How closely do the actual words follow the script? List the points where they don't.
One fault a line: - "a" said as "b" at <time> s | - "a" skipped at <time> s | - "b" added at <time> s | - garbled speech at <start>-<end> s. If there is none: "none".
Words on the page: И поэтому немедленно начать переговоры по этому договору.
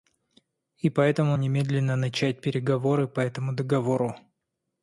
none